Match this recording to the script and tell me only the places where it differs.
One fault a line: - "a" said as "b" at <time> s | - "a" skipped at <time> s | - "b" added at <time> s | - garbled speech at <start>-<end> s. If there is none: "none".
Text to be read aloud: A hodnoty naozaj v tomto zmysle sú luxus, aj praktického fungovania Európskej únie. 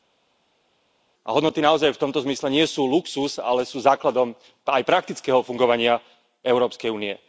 - "nie" added at 2.5 s
- "ale sú základom" added at 3.4 s